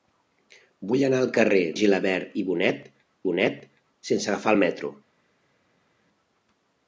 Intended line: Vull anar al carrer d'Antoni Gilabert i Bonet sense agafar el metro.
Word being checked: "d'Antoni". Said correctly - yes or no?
no